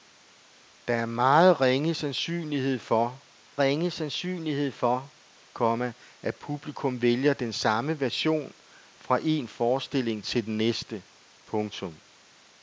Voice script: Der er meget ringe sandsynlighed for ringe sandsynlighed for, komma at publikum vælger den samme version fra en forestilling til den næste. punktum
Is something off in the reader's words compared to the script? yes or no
no